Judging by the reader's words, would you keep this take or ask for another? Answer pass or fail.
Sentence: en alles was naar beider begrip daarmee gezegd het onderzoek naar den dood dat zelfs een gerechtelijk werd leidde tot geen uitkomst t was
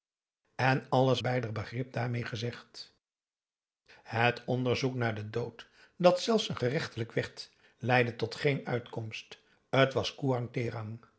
fail